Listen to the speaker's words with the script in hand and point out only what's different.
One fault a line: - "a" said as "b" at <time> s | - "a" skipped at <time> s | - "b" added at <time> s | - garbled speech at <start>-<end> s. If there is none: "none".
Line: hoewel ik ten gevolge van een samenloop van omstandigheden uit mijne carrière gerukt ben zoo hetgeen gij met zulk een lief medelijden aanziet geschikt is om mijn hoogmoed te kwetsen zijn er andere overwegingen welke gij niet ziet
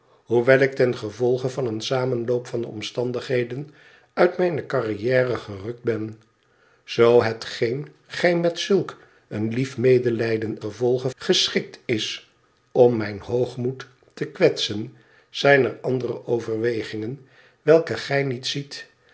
- "aanziet" said as "gevolge" at 10.6 s